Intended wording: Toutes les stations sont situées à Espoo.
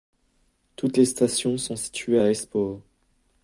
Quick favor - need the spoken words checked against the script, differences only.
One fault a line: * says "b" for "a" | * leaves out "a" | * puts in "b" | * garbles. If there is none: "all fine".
all fine